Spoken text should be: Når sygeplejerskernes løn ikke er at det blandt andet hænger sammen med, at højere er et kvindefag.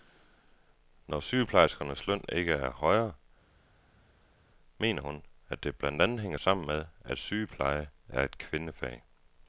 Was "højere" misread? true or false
true